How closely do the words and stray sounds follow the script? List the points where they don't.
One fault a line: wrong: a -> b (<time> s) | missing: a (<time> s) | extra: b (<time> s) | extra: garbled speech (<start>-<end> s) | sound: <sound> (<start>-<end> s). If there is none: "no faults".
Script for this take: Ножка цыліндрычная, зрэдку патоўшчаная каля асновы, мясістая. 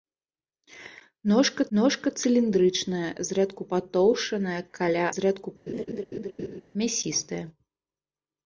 extra: ножка (1.8 s)
wrong: асновы -> зрэдку (5.2 s)
sound: laugh (5.7-6.6 s)